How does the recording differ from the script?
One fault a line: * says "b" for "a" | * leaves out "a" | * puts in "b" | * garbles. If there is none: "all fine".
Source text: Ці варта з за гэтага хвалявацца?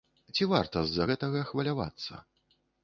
all fine